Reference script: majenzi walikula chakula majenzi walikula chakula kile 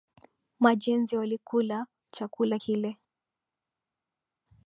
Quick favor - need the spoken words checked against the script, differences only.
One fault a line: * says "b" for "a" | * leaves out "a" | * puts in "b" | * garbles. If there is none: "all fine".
* leaves out "majenzi walikula chakula"